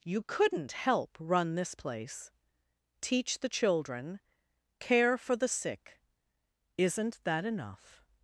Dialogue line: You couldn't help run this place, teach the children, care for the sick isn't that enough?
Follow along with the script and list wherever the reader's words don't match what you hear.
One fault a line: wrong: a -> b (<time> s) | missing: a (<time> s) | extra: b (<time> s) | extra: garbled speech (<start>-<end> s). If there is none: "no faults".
no faults